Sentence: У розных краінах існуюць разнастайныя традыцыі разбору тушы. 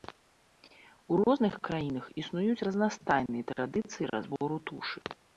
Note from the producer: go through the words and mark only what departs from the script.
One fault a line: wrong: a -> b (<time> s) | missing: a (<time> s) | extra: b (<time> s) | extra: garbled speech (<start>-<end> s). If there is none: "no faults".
no faults